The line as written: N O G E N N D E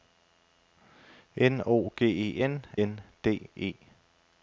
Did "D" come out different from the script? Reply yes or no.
no